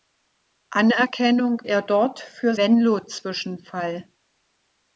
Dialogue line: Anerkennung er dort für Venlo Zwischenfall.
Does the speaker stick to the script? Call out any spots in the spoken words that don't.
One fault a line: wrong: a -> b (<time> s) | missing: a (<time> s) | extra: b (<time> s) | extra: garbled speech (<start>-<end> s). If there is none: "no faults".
no faults